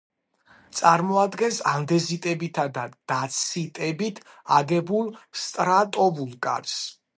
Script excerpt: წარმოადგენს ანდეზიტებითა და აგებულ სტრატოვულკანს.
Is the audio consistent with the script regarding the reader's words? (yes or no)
no